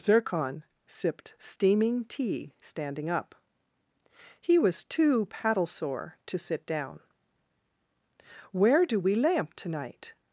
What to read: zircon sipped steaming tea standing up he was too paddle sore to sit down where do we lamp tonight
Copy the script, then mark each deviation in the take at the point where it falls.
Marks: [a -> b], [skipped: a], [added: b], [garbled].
zircon sipped steaming tea standing up he was too paddle sore to sit down where do we lamp tonight